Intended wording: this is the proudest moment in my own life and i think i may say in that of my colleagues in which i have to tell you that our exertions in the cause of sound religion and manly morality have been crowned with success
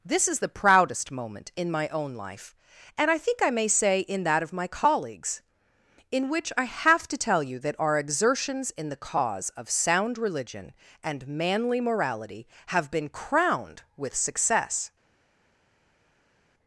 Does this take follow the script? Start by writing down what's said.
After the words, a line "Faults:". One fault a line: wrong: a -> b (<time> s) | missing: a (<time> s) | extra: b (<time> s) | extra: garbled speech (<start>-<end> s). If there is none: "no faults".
this is the proudest moment in my own life and i think i may say in that of my colleagues in which i have to tell you that our exertions in the cause of sound religion and manly morality have been crowned with success
Faults:
no faults